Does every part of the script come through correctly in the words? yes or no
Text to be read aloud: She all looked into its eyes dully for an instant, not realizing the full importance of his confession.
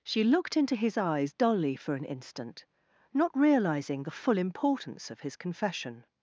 no